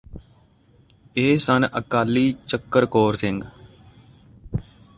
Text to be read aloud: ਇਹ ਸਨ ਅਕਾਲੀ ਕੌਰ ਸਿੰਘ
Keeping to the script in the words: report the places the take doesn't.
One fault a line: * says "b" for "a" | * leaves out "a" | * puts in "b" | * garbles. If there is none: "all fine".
* puts in "ਚੱਕਰ"